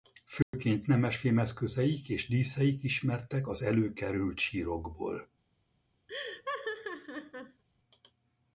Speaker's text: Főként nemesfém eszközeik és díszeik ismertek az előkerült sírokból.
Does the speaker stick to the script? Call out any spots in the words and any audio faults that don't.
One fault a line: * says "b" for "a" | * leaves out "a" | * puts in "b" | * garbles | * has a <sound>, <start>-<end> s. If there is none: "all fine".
* has a dropout, 0.4-0.5 s
* has a laugh, 6.1-7.6 s